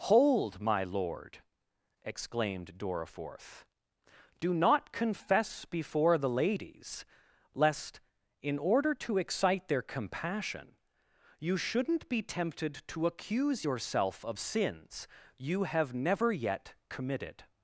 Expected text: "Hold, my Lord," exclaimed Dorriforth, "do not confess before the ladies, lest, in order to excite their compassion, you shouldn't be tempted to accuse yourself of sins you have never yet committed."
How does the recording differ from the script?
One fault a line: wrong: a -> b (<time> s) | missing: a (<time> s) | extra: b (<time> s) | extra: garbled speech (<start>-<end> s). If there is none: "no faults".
no faults